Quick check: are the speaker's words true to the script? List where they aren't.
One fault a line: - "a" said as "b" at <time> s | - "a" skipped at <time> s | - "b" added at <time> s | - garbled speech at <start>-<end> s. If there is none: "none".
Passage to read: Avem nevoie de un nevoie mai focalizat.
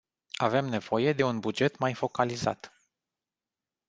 - "nevoie" said as "buget" at 1.4 s